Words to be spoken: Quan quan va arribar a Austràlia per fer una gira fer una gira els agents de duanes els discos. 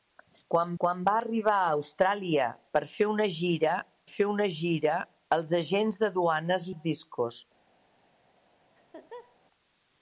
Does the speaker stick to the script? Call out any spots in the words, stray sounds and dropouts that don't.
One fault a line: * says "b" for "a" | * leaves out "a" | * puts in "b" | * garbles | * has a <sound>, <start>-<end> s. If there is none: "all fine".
* has a laugh, 8.8-9.4 s